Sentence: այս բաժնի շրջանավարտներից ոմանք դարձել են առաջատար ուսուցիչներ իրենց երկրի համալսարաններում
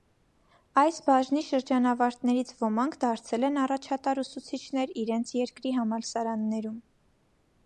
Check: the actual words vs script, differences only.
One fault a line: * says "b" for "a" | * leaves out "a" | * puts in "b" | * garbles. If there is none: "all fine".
all fine